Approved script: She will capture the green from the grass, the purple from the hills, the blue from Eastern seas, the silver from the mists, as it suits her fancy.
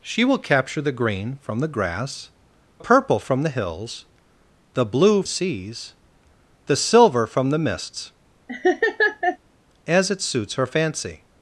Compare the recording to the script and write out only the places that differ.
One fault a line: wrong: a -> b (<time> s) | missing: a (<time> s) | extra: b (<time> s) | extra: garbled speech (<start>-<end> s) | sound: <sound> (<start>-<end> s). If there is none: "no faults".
missing: the (2.3 s)
missing: from Eastern (5.2 s)
sound: laugh (8.5-9.4 s)